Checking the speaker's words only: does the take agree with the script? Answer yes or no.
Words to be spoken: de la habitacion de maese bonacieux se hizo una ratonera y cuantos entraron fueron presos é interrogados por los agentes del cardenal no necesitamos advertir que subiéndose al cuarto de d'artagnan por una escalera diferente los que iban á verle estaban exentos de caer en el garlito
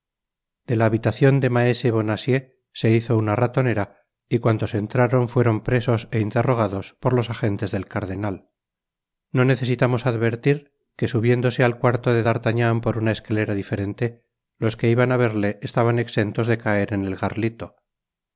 yes